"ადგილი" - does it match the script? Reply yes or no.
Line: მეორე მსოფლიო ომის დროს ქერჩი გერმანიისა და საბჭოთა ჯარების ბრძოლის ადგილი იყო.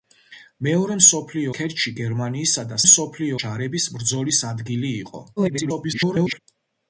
yes